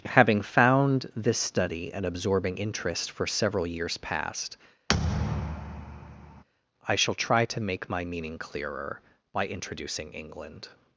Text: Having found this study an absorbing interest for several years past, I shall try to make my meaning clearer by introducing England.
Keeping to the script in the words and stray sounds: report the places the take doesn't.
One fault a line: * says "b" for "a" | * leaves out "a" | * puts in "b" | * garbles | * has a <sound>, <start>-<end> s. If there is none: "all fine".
* has a thud, 4.9-6.4 s